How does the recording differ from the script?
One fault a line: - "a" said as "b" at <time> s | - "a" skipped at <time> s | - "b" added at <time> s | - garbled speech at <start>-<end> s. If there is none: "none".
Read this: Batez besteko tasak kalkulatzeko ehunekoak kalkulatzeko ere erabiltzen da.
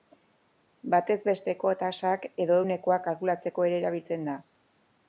- "kalkulatzeko" said as "edo" at 2.4 s